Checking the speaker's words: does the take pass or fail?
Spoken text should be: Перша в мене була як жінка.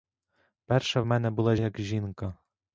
pass